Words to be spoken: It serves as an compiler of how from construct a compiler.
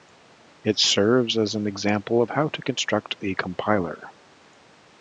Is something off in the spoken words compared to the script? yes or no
yes